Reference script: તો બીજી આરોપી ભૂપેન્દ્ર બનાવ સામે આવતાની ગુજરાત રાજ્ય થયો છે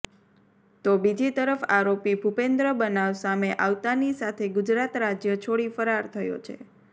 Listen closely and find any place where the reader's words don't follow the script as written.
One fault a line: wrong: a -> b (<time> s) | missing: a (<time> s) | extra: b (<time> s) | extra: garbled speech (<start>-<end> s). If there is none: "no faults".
extra: તરફ (1.3 s)
extra: સાથે (4.2 s)
extra: છોડી ફરાર (5.5 s)